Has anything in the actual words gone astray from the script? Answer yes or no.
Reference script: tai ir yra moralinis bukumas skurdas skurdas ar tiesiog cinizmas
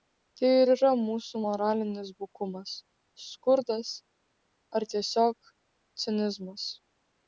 yes